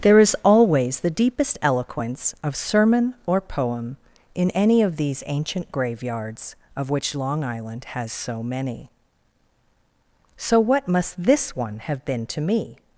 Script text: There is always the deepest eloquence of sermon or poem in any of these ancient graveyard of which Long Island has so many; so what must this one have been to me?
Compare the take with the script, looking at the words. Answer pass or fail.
fail